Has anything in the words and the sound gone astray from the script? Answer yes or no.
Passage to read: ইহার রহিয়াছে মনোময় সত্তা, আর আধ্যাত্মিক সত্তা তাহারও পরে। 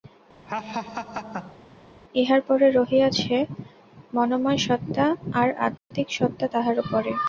yes